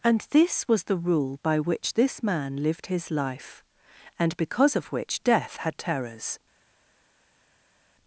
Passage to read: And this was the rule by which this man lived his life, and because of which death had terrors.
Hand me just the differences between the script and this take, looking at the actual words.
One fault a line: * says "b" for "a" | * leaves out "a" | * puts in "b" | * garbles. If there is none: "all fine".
all fine